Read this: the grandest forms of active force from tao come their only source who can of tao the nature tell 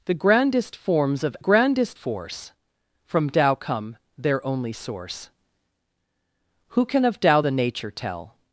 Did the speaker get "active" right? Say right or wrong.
wrong